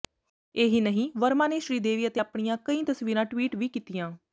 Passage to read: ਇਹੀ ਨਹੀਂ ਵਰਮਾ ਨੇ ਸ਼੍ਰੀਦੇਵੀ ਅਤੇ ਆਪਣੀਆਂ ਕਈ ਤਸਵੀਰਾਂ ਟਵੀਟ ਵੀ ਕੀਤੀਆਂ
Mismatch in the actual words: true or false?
false